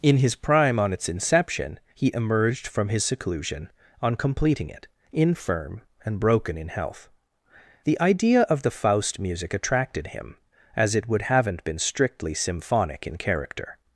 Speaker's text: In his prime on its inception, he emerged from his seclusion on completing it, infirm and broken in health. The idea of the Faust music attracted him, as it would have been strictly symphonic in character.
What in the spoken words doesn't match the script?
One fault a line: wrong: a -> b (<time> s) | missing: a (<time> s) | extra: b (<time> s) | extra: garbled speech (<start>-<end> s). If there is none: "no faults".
wrong: have -> haven't (11.2 s)